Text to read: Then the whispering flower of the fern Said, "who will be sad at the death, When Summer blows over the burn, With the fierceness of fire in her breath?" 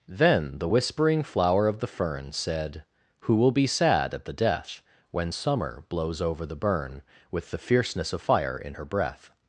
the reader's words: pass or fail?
pass